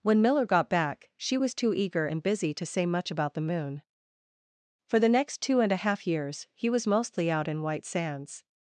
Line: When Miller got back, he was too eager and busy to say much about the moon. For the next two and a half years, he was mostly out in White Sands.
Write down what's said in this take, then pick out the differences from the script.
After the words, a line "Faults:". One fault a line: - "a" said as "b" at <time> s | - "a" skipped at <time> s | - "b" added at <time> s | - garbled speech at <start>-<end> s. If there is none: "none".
When Miller got back, she was too eager and busy to say much about the moon. For the next two and a half years, he was mostly out in White Sands.
Faults:
- "he" said as "she" at 1.1 s